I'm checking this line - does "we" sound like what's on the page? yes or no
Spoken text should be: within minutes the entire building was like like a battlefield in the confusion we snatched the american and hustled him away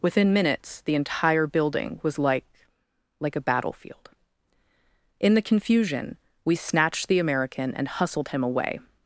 yes